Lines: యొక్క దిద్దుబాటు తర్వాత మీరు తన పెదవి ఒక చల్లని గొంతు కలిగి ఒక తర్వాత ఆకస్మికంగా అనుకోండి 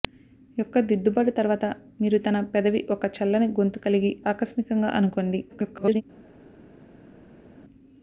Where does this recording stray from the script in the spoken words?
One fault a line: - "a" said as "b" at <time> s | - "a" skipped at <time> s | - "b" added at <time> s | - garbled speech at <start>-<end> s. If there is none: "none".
- "ఒక తర్వాత" skipped at 4.1 s
- garbled speech at 5.5-6.0 s